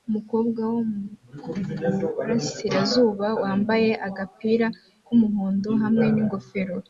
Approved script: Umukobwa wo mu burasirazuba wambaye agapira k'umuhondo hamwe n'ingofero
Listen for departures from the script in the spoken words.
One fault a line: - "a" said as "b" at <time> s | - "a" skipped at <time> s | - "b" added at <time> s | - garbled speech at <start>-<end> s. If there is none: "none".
none